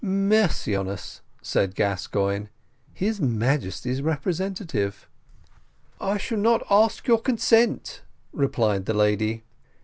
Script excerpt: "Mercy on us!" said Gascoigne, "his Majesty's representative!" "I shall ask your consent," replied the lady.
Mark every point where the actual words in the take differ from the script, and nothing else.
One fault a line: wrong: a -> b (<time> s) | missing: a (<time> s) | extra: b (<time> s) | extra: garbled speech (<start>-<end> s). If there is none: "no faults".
extra: not (6.4 s)